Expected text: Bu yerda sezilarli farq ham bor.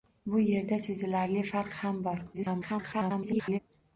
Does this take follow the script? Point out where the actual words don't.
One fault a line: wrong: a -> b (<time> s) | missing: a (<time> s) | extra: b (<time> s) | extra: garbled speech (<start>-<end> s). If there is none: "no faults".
extra: garbled speech (2.3-3.6 s)